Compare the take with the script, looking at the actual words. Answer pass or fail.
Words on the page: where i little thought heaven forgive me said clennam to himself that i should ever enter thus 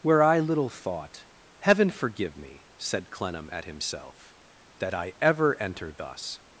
fail